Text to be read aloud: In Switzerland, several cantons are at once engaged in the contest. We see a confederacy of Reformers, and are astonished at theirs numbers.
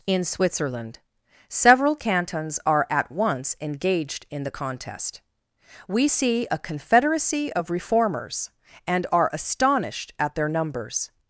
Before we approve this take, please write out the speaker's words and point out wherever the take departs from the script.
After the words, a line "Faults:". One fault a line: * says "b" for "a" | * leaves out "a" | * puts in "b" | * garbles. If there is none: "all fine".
In Switzerland, several cantons are at once engaged in the contest. We see a confederacy of Reformers, and are astonished at their numbers.
Faults:
* says "their" for "theirs"